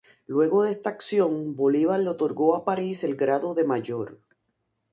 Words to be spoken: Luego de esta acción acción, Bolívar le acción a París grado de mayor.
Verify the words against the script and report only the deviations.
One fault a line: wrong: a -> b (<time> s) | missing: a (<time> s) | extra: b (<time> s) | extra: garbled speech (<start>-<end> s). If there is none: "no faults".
missing: acción (1.6 s)
wrong: acción -> otorgó (2.1 s)
extra: el (3.0 s)